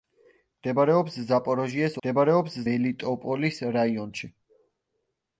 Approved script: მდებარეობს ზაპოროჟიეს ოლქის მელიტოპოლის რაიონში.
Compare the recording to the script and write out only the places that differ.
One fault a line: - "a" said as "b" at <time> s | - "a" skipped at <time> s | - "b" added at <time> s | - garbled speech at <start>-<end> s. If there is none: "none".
- "ოლქის" said as "მდებარეობს" at 2.0 s